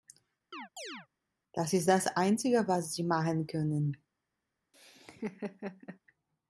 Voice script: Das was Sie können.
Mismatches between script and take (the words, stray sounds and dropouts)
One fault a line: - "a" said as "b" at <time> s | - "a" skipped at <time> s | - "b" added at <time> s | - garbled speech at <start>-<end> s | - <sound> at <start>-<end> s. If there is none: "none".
- chirp at 0.5-1.1 s
- "ist das einzige" added at 1.7 s
- "machen" added at 3.0 s
- laugh at 4.7-6.0 s